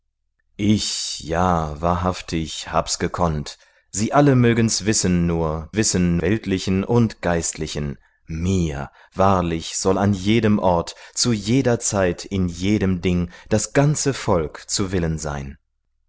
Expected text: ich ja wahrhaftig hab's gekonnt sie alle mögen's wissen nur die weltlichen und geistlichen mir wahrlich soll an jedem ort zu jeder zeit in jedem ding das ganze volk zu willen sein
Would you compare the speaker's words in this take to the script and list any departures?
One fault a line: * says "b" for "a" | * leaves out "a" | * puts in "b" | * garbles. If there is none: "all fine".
* says "wissen" for "die"